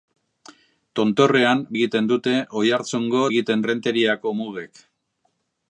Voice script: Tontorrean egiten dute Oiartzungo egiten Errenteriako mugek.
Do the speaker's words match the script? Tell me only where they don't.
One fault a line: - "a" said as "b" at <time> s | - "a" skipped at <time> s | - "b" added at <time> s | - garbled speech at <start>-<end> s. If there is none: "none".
none